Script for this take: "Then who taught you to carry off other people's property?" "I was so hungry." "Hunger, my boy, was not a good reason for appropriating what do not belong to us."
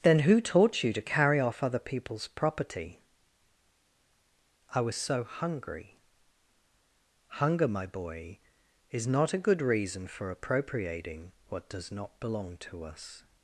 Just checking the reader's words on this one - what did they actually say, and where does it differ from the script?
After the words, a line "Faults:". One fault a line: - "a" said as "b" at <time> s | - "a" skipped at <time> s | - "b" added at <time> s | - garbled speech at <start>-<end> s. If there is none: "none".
"Then who taught you to carry off other people's property?" "I was so hungry." "Hunger, my boy, is not a good reason for appropriating what does not belong to us."
Faults:
- "was" said as "is" at 8.9 s
- "do" said as "does" at 11.7 s